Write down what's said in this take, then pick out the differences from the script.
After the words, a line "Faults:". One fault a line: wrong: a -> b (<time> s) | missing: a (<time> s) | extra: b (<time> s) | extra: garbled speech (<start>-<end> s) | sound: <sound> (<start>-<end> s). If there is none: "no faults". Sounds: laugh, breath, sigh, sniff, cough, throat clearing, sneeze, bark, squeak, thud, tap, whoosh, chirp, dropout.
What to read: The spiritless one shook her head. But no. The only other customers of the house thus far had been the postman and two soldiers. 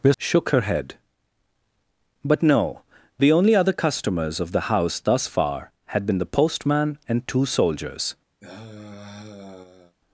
The shook her head. But no. The only other customers of the house thus far had been the postman and two soldiers.
Faults:
missing: spiritless one (0.1 s)
sound: sigh (8.4-10.0 s)